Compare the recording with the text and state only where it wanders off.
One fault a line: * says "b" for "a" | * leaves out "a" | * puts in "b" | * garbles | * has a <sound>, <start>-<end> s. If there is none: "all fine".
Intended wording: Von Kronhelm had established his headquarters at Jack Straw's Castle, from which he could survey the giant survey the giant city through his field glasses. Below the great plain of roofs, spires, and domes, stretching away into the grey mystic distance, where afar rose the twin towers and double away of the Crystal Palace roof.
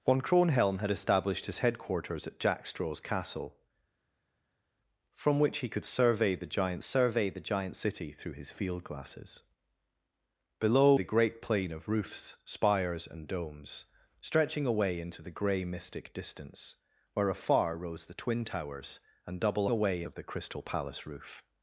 all fine